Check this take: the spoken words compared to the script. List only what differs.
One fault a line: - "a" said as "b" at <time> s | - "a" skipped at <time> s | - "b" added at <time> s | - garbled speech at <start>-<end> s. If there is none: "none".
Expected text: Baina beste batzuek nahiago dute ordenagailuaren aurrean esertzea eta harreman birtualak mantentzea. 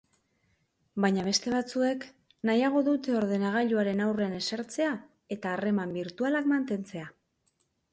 none